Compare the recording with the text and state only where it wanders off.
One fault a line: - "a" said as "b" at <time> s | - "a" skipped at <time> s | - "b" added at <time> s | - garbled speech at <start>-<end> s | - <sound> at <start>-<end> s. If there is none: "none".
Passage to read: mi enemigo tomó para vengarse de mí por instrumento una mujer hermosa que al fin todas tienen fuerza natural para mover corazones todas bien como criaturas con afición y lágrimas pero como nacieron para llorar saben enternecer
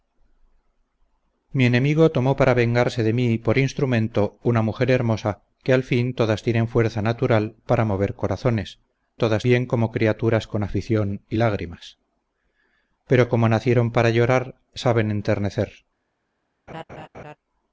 - laugh at 16.7-17.4 s